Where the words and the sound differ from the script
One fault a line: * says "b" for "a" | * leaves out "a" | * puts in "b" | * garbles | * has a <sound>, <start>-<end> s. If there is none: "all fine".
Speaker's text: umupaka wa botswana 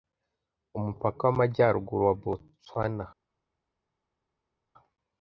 * puts in "w'amajyaruguru"